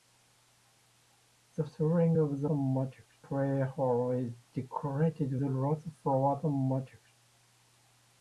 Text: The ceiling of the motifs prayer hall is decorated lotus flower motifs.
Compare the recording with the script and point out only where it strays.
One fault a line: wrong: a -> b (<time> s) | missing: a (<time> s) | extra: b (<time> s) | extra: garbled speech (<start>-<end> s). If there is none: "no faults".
no faults